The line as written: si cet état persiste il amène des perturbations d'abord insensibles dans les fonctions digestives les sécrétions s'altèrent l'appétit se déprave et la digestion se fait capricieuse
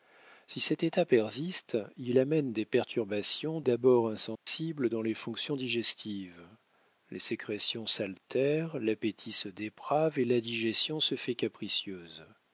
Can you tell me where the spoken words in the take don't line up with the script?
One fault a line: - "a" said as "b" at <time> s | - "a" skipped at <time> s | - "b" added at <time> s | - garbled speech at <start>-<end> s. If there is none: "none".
none